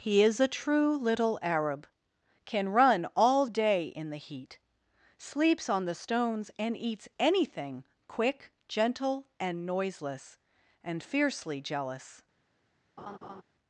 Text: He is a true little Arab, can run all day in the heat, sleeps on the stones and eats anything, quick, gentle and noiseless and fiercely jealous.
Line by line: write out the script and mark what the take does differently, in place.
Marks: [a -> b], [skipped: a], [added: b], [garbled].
He is a true little Arab, can run all day in the heat, sleeps on the stones and eats anything, quick, gentle and noiseless and fiercely jealous.